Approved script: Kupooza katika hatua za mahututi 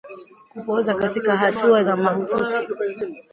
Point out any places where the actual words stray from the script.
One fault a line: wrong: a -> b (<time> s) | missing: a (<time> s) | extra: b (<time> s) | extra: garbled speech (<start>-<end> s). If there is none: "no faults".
no faults